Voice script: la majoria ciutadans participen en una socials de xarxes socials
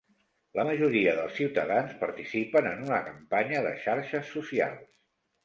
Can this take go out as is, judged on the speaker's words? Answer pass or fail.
fail